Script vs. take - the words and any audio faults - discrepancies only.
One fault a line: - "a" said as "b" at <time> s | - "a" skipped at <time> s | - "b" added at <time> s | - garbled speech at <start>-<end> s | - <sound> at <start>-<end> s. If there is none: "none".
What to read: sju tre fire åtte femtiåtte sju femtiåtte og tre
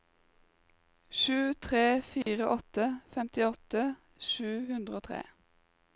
- dropout at 2.2-2.3 s
- "femtiåtte" said as "hundre" at 4.7 s